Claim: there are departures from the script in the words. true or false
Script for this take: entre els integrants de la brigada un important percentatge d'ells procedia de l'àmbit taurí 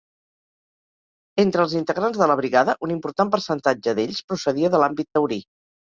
false